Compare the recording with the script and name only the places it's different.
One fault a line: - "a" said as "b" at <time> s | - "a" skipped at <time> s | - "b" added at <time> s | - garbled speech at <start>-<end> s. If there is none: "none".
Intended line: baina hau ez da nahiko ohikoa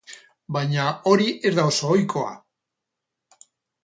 - "hau" said as "hori" at 1.1 s
- "nahiko" said as "oso" at 1.7 s